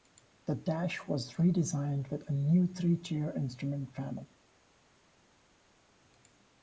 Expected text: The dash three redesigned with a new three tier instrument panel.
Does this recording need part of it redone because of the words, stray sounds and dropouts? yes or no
yes